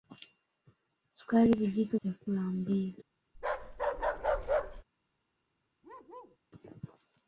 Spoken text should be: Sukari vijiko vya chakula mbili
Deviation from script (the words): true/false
true